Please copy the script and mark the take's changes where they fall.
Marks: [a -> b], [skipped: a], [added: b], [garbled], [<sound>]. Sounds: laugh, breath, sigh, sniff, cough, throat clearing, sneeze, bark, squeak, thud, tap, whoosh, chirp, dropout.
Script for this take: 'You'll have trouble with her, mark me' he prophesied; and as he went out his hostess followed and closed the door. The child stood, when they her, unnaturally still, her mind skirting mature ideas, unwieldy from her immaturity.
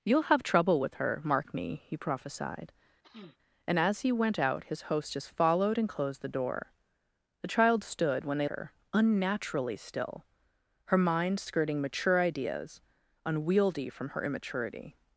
'You'll have trouble with her, mark me' he prophesied; [sniff] and as he went out his hostess followed and closed the door. The child stood, when they her, unnaturally still, her mind skirting mature ideas, unwieldy from her immaturity.